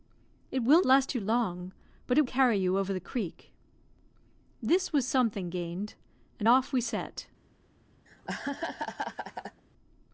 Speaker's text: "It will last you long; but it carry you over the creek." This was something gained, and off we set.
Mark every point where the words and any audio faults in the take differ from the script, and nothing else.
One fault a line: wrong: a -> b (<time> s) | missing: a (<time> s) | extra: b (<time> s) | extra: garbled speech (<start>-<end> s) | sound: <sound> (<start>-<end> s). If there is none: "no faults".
sound: laugh (8.1-9.6 s)